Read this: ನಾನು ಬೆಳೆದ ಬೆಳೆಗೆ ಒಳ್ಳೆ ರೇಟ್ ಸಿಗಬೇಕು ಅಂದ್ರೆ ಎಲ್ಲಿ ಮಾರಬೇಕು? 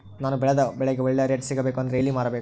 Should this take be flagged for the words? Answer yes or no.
no